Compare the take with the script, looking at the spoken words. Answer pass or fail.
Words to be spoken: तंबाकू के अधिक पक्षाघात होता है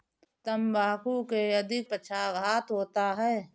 pass